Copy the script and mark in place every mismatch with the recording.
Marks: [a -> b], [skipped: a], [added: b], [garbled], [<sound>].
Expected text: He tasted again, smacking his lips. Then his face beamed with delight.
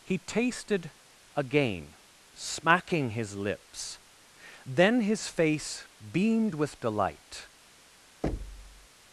He tasted again, smacking his lips. Then his face beamed with delight. [thud]